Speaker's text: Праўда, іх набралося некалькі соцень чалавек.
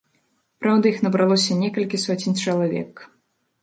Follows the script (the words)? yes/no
yes